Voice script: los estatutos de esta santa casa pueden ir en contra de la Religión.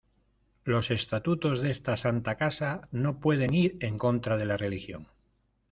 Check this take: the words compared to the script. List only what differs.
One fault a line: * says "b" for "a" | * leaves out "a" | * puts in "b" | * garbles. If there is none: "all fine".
* puts in "no"